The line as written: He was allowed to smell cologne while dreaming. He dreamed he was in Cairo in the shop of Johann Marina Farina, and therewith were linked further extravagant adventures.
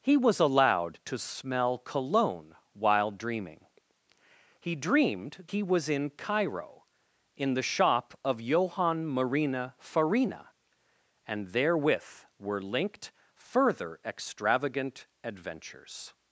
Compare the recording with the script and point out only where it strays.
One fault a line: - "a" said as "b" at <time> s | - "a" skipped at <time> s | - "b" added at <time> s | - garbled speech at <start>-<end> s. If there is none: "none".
none